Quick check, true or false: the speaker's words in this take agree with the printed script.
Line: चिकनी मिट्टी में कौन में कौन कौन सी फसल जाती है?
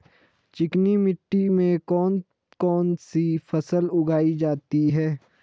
false